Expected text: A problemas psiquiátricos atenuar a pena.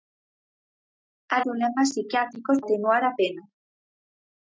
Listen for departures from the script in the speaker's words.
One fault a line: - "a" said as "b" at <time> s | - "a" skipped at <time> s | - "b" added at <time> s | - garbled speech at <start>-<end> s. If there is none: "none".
none